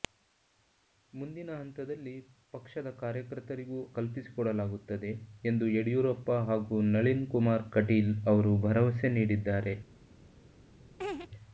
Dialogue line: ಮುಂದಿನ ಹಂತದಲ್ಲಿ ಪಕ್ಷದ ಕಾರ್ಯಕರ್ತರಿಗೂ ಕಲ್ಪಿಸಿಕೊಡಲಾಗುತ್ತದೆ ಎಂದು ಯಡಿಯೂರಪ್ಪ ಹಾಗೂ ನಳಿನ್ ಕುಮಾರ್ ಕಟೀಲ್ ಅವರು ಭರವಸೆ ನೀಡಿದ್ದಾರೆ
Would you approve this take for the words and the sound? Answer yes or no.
no